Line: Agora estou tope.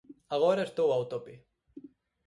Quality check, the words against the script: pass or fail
fail